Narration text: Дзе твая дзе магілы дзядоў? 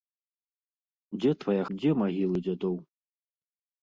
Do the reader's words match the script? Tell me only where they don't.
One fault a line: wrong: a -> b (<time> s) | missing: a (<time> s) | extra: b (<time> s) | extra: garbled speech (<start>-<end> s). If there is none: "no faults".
no faults